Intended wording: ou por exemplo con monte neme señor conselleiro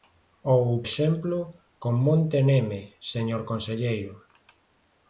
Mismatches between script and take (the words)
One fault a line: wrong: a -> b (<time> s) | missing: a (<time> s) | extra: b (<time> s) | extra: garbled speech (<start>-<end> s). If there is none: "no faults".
missing: por (0.7 s)